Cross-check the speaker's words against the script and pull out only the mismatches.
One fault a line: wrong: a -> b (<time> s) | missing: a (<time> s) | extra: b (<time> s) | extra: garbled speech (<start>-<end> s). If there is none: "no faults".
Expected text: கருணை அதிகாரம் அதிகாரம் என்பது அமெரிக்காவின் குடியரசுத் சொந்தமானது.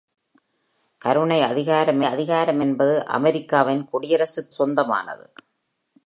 no faults